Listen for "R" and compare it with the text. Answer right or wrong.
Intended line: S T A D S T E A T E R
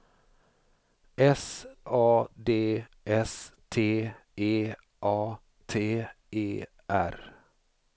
right